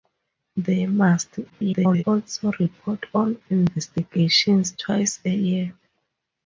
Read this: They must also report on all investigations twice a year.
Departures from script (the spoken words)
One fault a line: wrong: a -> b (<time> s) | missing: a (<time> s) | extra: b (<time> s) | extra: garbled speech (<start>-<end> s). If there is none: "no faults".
extra: garbled speech (1.5-2.0 s)
missing: all (3.4 s)